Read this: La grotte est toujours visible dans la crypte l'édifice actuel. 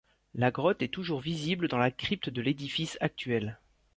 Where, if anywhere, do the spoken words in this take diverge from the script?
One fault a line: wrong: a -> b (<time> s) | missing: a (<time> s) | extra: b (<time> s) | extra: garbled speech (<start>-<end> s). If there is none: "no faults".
extra: de (2.3 s)